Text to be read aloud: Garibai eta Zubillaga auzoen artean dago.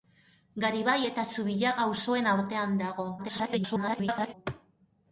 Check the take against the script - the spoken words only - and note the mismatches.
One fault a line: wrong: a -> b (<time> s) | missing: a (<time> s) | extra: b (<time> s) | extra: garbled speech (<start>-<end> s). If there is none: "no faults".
extra: garbled speech (3.2-4.3 s)